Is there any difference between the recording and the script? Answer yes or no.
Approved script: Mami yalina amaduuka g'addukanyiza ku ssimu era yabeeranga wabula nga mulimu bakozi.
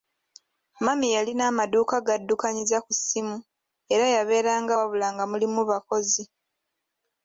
no